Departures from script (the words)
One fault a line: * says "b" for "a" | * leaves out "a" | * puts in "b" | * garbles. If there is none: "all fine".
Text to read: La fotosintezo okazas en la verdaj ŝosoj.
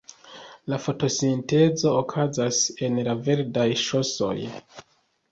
all fine